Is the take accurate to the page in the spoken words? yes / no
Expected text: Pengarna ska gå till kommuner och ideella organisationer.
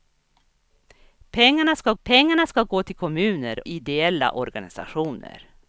no